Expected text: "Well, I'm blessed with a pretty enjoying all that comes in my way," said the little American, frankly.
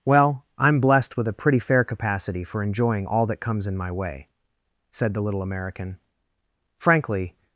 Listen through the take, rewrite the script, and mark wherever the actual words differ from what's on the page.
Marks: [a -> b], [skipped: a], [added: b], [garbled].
"Well, I'm blessed with a pretty [added: fair capacity for] enjoying all that comes in my way," said the little American, frankly.